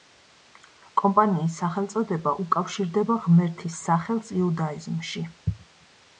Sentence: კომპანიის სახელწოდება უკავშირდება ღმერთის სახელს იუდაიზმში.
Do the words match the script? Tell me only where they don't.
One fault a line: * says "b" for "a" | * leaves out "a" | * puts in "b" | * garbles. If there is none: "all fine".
all fine